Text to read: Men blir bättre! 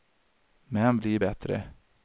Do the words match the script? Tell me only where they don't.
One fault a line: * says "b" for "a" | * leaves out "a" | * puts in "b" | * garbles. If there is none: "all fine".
all fine